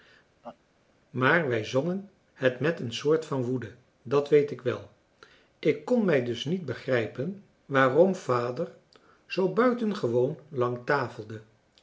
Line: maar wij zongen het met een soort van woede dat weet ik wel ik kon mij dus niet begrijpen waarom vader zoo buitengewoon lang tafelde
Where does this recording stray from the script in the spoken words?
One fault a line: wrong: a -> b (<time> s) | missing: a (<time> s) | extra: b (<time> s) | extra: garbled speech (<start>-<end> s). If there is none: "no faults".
no faults